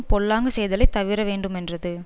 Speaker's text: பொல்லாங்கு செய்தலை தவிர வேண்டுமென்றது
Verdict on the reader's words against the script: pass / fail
pass